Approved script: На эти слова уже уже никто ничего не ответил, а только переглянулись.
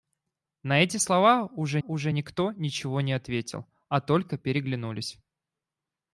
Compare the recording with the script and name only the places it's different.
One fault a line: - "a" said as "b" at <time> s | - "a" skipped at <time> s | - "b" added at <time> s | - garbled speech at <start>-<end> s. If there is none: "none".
none